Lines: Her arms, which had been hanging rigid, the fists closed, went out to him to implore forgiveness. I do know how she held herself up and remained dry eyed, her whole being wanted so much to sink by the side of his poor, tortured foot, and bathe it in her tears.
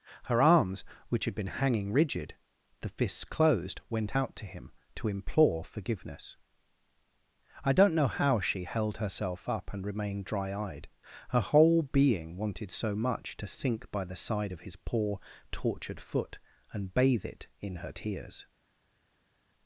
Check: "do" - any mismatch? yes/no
yes